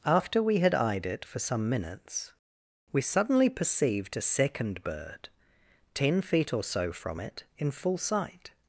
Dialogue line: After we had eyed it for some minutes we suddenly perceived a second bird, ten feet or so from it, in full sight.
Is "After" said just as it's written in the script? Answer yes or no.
yes